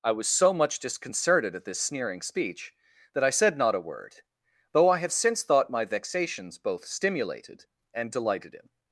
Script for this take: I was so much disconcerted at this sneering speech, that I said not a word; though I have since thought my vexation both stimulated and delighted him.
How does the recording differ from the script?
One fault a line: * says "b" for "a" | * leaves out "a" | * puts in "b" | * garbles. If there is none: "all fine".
* says "vexations" for "vexation"